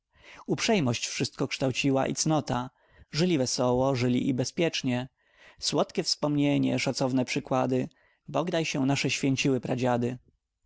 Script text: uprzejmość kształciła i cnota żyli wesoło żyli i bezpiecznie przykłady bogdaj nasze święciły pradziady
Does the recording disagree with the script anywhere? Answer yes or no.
yes